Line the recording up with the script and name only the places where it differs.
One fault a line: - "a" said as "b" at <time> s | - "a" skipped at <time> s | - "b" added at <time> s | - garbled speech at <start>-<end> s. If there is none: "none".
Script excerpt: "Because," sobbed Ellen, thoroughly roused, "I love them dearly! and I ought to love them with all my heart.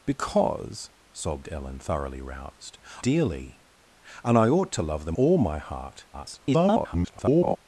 - "I love them" skipped at 2.8 s
- "with" skipped at 5.1 s
- garbled speech at 6.1-7.6 s